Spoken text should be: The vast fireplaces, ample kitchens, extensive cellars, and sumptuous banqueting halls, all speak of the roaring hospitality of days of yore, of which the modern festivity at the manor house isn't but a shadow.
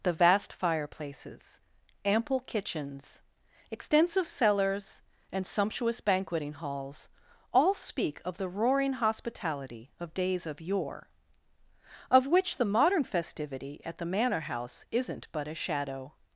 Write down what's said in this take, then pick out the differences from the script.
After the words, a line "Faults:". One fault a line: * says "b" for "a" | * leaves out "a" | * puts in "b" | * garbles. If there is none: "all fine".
The vast fireplaces, ample kitchens, extensive cellars, and sumptuous banqueting halls, all speak of the roaring hospitality of days of yore, of which the modern festivity at the manor house isn't but a shadow.
Faults:
all fine